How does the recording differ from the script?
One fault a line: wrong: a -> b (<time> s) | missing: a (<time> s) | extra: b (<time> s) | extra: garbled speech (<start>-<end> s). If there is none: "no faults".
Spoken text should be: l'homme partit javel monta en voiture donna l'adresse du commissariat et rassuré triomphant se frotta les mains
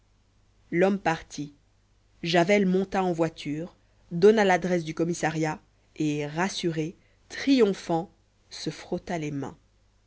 no faults